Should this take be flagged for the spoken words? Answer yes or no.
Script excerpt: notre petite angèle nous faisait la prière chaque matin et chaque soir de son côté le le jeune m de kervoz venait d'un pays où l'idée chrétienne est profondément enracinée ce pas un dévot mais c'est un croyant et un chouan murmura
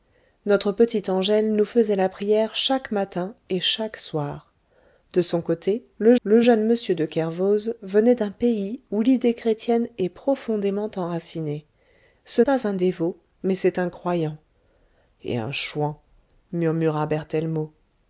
no